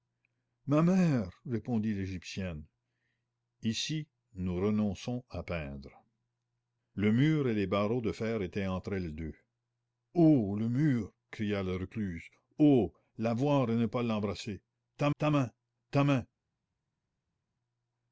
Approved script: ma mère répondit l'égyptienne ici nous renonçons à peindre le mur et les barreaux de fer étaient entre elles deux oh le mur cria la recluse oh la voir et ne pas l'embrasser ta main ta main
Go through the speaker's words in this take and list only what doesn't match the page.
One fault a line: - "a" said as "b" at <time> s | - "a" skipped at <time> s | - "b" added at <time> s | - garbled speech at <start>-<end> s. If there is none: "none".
- "ta" added at 15.2 s